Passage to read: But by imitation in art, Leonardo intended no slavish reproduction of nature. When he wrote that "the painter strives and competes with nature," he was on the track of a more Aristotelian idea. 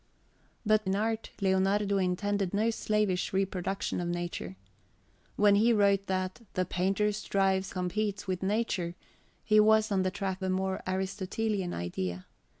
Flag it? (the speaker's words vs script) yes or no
yes